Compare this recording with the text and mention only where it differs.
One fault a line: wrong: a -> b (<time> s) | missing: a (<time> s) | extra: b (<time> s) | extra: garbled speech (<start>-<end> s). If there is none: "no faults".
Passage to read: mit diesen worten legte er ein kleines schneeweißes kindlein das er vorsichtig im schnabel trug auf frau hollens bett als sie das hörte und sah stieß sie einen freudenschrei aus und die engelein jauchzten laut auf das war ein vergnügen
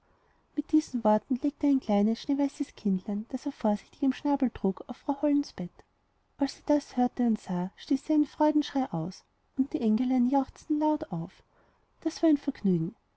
no faults